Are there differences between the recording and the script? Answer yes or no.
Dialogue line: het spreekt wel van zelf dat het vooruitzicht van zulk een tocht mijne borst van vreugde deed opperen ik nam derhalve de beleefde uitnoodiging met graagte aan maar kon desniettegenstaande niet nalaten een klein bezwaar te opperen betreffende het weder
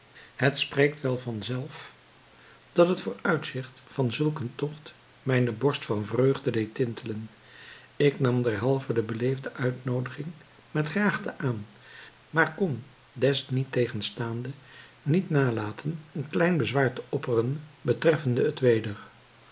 yes